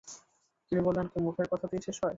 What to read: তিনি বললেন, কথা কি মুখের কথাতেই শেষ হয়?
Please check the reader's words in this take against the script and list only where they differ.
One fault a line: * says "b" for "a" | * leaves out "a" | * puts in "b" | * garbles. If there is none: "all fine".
* leaves out "কথা"